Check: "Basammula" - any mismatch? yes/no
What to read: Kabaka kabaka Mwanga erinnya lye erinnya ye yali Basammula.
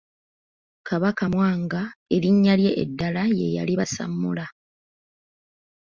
no